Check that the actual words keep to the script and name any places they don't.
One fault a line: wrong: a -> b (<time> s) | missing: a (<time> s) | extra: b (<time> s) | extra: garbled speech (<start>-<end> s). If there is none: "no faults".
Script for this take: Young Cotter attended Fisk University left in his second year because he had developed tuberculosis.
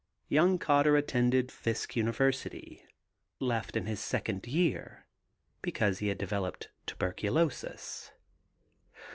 no faults